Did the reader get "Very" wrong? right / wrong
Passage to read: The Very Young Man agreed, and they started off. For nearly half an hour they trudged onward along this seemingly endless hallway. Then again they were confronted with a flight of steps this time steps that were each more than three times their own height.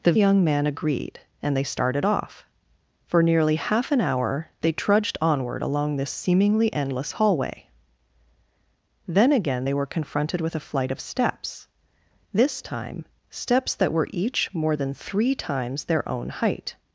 wrong